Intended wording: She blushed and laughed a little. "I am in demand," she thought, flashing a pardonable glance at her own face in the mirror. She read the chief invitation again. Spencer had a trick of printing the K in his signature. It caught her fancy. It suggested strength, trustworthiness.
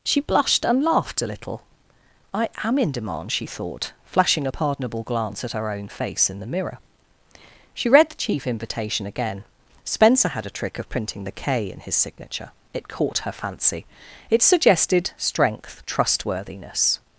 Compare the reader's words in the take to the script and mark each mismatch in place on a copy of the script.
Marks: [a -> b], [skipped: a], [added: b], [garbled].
She blushed and laughed a little. "I am in demand," she thought, flashing a pardonable glance at her own face in the mirror. She read the chief invitation again. Spencer had a trick of printing the K in his signature. It caught her fancy. It suggested strength, trustworthiness.